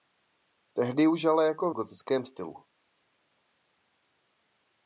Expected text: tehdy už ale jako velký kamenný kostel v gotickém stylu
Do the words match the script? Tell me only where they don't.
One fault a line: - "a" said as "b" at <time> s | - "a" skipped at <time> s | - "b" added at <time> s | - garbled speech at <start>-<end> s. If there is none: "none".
- "velký kamenný kostel" skipped at 1.7 s